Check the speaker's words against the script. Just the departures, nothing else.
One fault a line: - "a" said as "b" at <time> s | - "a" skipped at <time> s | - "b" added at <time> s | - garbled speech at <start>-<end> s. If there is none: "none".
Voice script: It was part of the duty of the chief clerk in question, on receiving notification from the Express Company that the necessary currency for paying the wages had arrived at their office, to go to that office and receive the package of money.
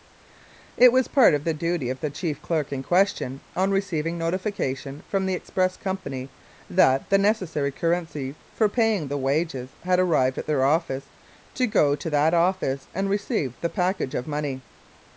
none